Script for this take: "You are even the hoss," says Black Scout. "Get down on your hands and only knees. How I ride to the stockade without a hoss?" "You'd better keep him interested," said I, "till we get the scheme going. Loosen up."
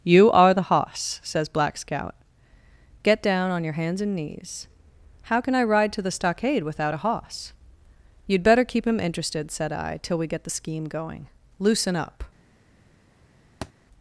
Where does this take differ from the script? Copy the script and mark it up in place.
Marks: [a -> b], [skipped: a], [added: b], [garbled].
"You are [skipped: even] the hoss," says Black Scout. "Get down on your hands and [skipped: only] knees. How [added: can] I ride to the stockade without a hoss?" "You'd better keep him interested," said I, "till we get the scheme going. Loosen up."